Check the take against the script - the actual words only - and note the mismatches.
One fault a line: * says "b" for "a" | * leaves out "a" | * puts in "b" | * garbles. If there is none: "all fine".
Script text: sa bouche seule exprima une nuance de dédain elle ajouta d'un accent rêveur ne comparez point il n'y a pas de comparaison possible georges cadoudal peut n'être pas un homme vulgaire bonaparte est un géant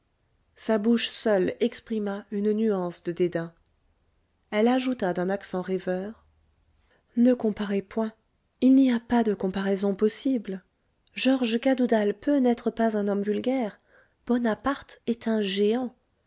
all fine